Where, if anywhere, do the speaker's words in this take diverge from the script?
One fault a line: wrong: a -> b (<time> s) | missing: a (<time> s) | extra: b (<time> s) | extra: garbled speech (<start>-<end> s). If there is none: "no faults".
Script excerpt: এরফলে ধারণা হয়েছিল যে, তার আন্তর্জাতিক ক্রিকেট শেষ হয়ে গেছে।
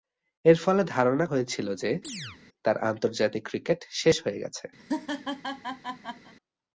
no faults